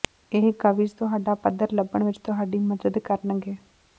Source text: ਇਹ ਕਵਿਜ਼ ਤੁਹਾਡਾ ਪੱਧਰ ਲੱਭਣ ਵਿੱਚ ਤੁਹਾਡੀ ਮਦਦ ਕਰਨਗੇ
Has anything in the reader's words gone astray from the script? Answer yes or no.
no